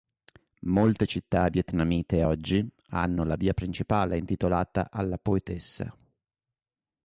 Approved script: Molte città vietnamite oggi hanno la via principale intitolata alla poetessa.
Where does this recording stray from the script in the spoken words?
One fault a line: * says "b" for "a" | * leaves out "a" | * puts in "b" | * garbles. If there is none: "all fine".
all fine